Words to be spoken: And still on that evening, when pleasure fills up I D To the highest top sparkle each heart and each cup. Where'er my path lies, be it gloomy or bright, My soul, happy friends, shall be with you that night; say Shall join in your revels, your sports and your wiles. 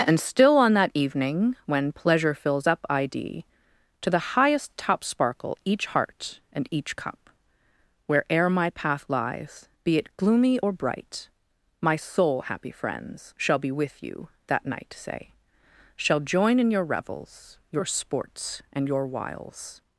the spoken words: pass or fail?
pass